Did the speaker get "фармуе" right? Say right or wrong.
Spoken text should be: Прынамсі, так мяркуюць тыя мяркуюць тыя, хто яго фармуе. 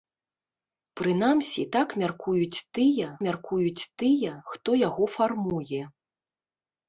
right